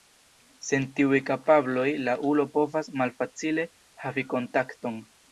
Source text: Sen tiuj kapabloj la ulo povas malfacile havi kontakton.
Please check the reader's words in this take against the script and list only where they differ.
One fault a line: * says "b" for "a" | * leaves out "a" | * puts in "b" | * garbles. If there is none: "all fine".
all fine